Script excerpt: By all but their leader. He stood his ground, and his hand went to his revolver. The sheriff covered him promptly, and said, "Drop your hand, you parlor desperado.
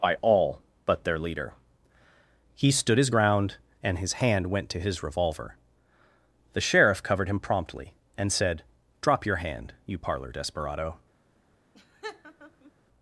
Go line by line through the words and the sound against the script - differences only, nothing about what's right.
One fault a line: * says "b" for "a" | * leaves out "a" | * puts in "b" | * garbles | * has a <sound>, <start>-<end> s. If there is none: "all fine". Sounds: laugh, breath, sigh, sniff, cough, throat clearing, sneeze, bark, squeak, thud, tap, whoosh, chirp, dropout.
* has a laugh, 11.7-12.7 s